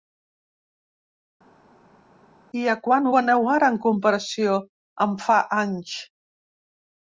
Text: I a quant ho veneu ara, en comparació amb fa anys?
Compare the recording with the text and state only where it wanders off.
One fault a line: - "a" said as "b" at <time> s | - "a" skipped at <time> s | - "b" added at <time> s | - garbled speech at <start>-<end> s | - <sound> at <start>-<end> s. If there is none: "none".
none